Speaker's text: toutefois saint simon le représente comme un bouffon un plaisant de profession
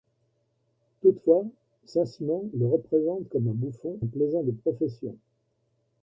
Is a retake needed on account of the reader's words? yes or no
no